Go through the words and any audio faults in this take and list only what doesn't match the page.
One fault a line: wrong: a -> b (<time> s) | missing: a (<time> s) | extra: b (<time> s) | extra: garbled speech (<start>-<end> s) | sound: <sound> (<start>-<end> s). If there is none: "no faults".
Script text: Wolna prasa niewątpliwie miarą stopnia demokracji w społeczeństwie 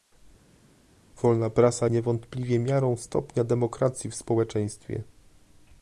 no faults